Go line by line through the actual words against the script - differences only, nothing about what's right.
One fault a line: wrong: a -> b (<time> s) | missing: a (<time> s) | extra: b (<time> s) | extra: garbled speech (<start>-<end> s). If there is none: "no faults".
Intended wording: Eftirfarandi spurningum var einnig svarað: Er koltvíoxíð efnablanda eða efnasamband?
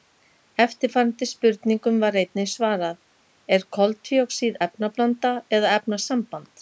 no faults